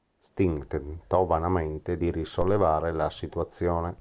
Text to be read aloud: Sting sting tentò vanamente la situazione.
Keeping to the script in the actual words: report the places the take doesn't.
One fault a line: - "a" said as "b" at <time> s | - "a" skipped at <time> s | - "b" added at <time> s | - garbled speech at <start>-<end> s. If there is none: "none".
- "sting" skipped at 0.7 s
- "di risollevare" added at 2.0 s